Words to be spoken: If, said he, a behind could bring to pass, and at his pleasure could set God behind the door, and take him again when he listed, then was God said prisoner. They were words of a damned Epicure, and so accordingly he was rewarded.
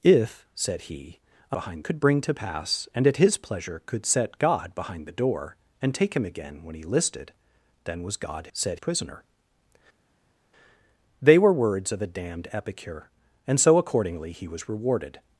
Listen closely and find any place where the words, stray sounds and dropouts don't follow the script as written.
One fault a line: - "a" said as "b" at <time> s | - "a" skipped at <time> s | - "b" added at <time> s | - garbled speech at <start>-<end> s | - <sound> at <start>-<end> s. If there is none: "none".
none